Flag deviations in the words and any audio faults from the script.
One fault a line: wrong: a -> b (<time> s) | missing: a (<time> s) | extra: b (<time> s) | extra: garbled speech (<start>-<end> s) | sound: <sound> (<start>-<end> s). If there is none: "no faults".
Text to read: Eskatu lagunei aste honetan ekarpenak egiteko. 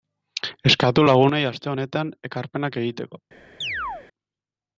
sound: chirp (3.6-4.1 s)